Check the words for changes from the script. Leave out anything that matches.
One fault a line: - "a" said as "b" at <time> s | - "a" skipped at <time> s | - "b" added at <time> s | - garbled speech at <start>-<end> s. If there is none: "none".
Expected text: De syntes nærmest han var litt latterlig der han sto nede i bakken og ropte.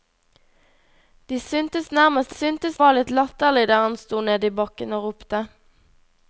- "han" said as "syntes" at 2.3 s